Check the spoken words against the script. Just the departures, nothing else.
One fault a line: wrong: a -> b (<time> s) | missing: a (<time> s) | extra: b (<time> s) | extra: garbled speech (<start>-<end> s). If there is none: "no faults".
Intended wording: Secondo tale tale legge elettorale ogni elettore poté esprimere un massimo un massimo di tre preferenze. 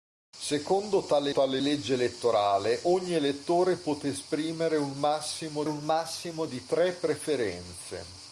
no faults